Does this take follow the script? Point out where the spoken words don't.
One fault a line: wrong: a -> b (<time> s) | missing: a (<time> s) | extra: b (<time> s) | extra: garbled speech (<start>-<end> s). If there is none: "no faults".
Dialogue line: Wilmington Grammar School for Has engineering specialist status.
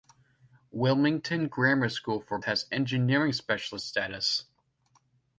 no faults